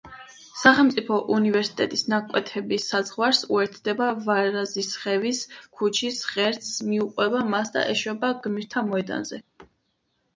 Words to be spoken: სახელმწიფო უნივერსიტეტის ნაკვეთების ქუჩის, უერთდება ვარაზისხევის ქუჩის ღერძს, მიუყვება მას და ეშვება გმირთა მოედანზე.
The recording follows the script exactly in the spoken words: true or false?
false